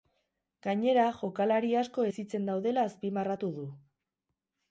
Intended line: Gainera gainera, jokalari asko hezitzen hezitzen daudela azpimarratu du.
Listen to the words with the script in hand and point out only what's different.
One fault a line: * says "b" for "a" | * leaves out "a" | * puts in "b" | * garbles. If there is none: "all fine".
* leaves out "gainera"
* leaves out "hezitzen"